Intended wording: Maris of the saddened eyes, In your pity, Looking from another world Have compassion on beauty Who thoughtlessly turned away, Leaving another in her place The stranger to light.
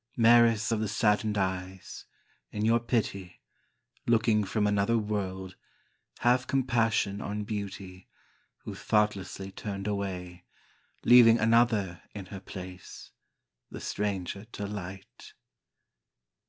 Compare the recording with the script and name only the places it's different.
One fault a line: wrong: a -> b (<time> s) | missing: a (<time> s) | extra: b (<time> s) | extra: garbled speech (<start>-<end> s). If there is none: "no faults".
no faults